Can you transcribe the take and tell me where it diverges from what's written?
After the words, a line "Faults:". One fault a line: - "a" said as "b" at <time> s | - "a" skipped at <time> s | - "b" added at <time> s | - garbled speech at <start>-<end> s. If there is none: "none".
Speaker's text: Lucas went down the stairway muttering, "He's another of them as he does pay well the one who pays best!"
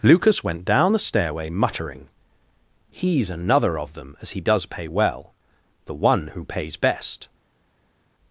Lucas went down the stairway muttering, "He's another of them as he does pay well the one who pays best!"
Faults:
none